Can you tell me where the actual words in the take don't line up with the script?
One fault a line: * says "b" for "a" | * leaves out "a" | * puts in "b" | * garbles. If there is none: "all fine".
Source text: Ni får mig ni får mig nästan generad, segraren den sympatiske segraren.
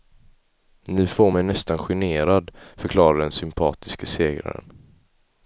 * leaves out "ni får mig"
* says "förklarade" for "segraren"